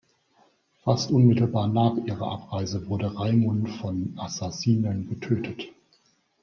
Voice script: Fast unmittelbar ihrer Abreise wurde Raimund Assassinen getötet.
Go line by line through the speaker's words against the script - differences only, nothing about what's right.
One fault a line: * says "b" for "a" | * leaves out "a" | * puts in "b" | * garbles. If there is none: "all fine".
* puts in "nach"
* puts in "von"